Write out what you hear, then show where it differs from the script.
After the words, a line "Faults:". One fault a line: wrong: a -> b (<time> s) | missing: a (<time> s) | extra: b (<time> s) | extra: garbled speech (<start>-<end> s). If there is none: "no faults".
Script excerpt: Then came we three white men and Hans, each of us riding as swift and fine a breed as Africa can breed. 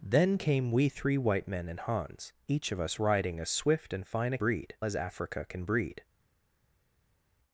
Then came we three white men and Hans, each of us riding as swift and fine a breed as Africa can breed.
Faults:
no faults